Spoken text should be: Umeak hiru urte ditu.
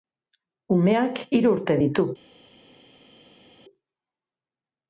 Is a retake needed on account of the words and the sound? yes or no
no